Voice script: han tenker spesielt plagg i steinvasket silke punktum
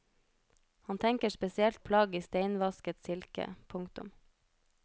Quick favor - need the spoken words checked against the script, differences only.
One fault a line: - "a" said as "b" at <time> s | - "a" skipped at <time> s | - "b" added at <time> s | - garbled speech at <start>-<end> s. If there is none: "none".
none